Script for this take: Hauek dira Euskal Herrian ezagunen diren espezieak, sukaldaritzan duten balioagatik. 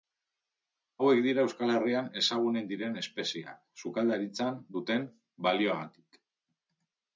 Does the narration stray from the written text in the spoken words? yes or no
no